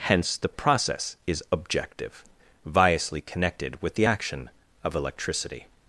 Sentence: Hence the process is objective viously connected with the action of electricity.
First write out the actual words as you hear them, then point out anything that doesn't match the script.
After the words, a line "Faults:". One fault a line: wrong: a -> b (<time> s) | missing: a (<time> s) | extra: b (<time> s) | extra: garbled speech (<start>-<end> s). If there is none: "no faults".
Hence the process is objective viously connected with the action of electricity.
Faults:
no faults